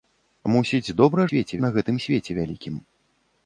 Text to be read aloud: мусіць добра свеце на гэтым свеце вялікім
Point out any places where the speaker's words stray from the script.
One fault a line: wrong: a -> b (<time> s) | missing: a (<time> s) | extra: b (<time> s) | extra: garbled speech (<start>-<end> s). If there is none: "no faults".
no faults